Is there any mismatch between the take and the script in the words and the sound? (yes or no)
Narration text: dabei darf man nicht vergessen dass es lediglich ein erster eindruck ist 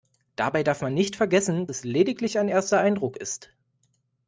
yes